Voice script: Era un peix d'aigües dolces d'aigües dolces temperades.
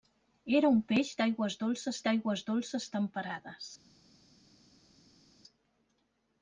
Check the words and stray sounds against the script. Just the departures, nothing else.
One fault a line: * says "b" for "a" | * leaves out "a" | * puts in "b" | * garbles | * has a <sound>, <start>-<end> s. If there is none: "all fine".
all fine